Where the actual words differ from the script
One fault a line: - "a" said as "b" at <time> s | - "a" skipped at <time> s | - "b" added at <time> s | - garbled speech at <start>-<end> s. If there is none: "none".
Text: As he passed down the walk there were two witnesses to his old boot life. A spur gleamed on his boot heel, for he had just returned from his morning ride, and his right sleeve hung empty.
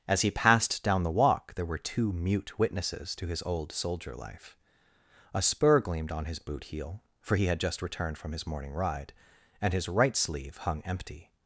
- "mute" added at 2.1 s
- "boot" said as "soldier" at 3.7 s